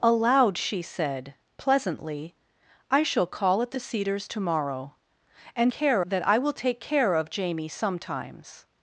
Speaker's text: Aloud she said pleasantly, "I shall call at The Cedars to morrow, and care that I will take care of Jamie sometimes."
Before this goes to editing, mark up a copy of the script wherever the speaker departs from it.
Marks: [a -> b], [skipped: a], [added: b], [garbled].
Aloud she said pleasantly, "I shall call at The Cedars to morrow, and care that I will take care of Jamie sometimes."